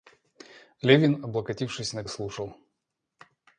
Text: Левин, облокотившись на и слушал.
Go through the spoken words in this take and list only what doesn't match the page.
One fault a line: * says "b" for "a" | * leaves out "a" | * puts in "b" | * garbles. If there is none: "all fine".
all fine